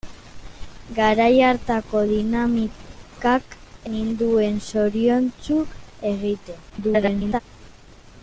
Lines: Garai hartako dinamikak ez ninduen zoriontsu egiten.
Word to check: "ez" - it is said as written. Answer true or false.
false